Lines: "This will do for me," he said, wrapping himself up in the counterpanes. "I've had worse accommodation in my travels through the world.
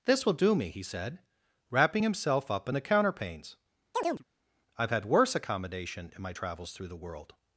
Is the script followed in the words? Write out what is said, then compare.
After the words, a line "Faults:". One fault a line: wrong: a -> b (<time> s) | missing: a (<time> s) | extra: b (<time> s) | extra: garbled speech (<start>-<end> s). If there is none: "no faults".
"This will do me," he said, wrapping himself up in the counterpanes. "I've had worse accommodation in my travels through the world.
Faults:
missing: for (0.6 s)